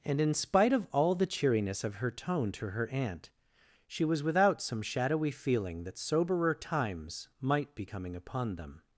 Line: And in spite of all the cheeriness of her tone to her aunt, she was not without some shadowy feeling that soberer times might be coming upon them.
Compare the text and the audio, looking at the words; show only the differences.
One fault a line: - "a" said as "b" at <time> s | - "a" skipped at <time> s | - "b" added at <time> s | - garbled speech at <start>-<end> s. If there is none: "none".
- "not" skipped at 4.2 s